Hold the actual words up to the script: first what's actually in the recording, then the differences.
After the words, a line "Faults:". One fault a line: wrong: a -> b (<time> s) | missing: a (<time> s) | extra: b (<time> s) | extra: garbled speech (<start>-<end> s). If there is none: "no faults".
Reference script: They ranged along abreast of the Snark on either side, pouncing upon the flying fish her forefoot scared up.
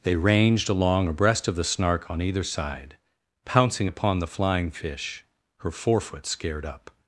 They ranged along abreast of the Snark on either side, pouncing upon the flying fish her forefoot scared up.
Faults:
no faults